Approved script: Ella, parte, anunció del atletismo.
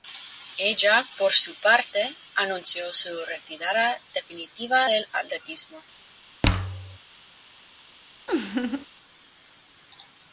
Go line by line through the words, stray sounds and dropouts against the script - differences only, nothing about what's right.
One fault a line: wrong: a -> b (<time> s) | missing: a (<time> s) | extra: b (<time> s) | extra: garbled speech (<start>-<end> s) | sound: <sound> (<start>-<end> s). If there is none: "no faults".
extra: por su (1.1 s)
extra: su retirada definitiva (2.9 s)
sound: thud (6.4-7.0 s)
sound: laugh (8.3-8.9 s)